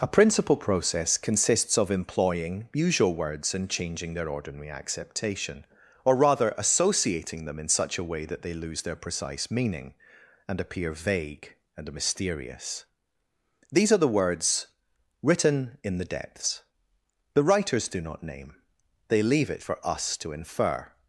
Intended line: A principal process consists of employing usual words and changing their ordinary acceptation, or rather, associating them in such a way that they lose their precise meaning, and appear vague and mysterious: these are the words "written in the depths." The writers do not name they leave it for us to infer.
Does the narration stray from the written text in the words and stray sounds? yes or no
no